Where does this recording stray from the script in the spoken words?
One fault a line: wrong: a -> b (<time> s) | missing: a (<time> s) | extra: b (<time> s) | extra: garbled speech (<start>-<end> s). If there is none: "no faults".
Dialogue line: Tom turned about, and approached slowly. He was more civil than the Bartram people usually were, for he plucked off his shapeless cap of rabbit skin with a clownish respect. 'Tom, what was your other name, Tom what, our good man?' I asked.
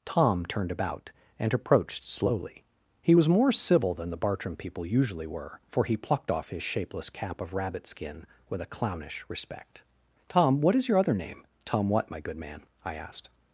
wrong: was -> is (10.8 s)
wrong: our -> my (12.1 s)